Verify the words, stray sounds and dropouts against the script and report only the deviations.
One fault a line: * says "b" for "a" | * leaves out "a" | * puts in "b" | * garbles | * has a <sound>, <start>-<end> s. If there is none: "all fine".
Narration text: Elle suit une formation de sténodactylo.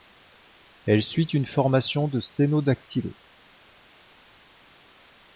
all fine